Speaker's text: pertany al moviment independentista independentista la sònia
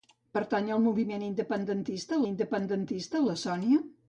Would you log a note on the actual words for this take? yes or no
no